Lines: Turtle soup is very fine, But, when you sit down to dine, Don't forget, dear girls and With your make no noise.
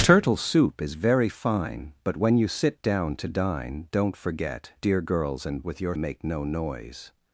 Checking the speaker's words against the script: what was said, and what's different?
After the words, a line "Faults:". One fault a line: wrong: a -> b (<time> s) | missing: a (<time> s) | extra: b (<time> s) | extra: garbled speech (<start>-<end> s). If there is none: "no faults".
Turtle soup is very fine, But, when you sit down to dine, Don't forget, dear girls and With your make no noise.
Faults:
no faults